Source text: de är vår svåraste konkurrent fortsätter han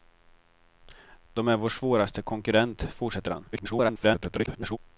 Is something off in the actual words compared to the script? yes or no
yes